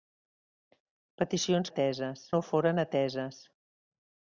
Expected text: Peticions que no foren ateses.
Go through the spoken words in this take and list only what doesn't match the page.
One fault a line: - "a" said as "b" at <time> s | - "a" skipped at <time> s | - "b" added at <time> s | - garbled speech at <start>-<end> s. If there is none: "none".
- "que" said as "ateses" at 1.7 s